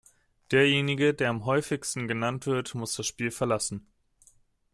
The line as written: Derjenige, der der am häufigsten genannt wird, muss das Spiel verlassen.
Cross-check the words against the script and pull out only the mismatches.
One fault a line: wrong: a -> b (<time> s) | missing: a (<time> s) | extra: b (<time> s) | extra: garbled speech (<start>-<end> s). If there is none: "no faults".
missing: der (1.3 s)